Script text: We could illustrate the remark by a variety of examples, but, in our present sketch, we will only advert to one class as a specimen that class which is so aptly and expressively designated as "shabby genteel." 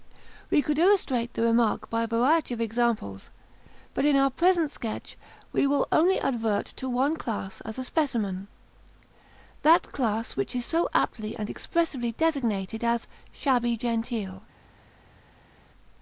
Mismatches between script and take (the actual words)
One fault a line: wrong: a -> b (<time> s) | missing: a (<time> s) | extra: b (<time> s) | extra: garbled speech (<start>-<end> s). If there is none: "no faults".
no faults